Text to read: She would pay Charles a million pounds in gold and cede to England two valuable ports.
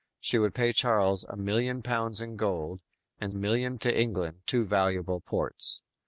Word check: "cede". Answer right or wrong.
wrong